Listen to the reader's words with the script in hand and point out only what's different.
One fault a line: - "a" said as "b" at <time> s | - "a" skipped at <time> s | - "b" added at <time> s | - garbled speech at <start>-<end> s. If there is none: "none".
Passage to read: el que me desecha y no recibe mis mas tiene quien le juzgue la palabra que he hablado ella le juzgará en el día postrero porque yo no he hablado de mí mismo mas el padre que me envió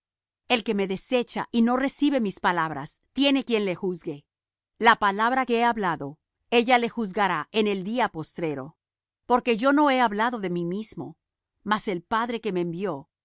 - "mas" said as "palabras" at 2.4 s